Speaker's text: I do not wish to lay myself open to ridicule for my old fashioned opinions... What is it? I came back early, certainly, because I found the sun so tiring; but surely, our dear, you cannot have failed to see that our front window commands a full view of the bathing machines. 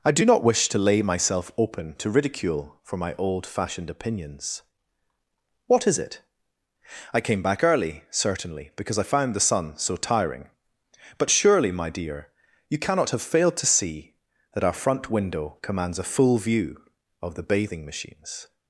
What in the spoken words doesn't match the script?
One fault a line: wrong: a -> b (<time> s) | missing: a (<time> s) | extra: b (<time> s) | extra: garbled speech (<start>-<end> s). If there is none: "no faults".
wrong: our -> my (11.7 s)